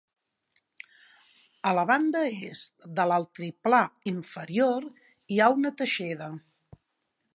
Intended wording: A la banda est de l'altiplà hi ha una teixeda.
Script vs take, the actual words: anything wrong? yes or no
yes